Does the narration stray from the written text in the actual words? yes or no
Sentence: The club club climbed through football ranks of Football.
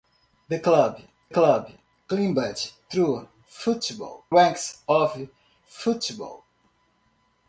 no